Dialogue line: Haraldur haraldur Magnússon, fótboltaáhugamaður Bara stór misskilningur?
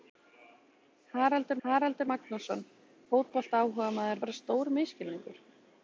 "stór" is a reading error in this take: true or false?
false